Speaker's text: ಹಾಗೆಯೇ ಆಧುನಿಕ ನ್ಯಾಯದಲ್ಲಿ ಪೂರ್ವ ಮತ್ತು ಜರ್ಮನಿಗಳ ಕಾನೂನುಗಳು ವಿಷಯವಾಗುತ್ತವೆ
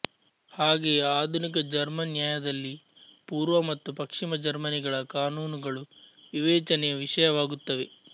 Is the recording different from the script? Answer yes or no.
yes